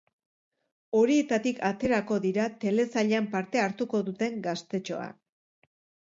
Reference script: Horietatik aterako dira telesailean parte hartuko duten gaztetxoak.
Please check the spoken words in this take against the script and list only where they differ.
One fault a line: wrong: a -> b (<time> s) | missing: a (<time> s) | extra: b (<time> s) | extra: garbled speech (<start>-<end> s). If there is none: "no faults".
no faults